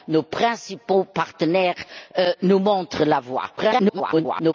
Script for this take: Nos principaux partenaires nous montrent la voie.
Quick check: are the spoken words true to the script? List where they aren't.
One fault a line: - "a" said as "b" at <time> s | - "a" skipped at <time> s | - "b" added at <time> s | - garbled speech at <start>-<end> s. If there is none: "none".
- garbled speech at 3.6-4.5 s